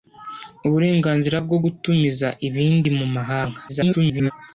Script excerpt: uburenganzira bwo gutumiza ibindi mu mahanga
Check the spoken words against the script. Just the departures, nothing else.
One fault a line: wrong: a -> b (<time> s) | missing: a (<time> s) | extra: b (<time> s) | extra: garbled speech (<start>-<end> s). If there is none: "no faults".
extra: garbled speech (3.7-4.3 s)